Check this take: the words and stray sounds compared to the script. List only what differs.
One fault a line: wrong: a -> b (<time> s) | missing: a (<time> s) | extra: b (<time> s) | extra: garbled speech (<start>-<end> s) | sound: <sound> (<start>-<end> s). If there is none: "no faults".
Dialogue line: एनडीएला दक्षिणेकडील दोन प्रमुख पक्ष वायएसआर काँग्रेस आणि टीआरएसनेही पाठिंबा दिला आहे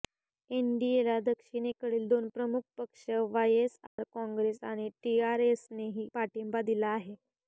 sound: dropout (3.9-4.0 s)